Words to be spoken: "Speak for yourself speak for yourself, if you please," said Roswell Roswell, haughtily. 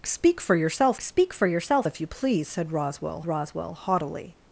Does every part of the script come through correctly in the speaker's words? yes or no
yes